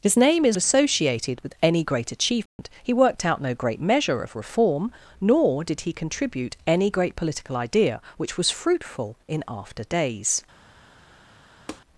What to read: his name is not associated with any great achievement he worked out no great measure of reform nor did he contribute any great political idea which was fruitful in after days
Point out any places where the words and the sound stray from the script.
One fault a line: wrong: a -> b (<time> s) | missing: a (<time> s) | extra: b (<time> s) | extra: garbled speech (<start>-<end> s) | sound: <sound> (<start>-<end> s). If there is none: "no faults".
missing: not (0.6 s)
sound: dropout (2.5-2.6 s)
sound: tap (11.7-11.8 s)